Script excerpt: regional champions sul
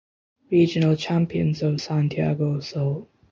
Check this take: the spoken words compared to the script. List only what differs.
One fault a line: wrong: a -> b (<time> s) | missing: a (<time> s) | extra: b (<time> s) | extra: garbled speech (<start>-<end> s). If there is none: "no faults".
extra: of santiago (1.6 s)